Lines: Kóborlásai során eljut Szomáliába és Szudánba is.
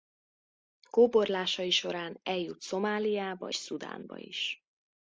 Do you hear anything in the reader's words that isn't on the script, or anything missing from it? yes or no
yes